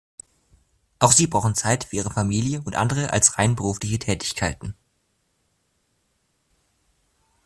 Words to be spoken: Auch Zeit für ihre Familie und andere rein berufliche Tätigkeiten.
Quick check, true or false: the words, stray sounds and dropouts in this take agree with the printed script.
false